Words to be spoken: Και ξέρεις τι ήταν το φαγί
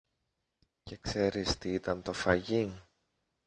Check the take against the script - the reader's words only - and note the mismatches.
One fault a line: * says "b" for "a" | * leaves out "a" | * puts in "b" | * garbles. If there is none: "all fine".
all fine